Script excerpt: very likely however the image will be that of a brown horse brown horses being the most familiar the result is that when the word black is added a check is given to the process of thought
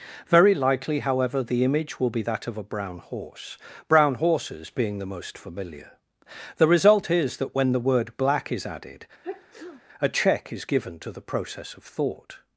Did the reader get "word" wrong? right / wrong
right